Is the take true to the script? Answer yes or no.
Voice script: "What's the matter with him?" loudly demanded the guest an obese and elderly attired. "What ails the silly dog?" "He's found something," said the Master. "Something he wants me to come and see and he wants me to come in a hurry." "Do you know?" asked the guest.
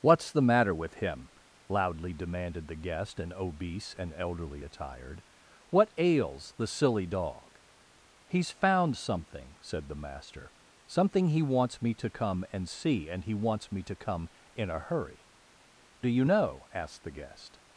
yes